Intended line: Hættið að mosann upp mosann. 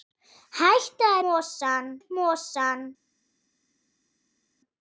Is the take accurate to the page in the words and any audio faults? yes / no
yes